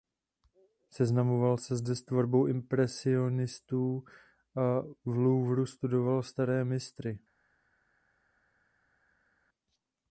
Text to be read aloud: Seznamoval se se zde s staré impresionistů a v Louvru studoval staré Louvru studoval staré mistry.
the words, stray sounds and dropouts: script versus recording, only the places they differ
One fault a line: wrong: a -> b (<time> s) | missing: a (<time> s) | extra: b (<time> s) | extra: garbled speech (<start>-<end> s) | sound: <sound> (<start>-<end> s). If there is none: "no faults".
missing: se (1.8 s)
wrong: staré -> tvorbou (2.0 s)
missing: Louvru studoval staré (6.7 s)